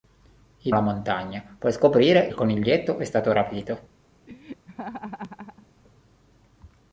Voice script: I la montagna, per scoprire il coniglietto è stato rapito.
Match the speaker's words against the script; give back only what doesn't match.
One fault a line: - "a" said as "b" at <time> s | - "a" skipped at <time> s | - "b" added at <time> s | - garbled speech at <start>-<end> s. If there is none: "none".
none